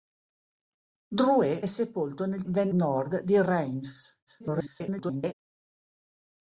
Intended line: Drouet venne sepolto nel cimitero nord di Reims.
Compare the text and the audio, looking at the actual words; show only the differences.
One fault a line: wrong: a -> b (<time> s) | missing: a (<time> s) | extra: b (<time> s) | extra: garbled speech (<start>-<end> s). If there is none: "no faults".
missing: venne (1.6 s)
wrong: cimitero -> venne (2.5 s)
extra: garbled speech (4.3-5.3 s)